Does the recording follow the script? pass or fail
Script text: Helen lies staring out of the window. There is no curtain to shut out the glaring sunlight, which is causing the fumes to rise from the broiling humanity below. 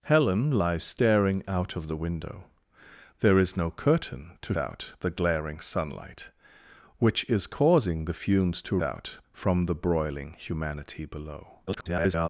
fail